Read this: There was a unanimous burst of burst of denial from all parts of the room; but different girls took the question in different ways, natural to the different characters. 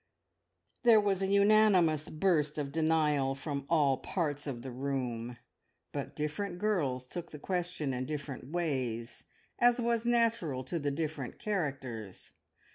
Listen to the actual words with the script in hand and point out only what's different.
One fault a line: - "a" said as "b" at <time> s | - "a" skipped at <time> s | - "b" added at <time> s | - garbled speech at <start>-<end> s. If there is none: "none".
- "burst of" skipped at 2.7 s
- "as was" added at 9.6 s